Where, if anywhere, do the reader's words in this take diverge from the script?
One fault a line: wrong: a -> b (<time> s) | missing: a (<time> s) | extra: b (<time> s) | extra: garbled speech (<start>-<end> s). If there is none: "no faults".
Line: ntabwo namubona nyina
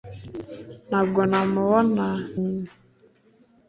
no faults